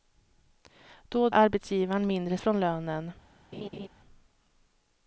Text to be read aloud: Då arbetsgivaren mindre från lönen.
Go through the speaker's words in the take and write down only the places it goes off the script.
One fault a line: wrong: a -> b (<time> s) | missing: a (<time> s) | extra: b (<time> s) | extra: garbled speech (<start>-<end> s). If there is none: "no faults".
no faults